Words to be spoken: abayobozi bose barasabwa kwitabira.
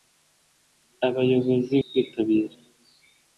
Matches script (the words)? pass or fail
fail